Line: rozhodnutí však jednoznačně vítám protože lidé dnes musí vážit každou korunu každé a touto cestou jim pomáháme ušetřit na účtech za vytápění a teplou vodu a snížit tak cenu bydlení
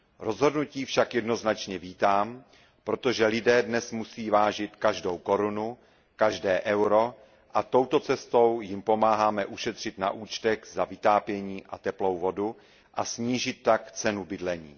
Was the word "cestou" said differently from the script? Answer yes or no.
no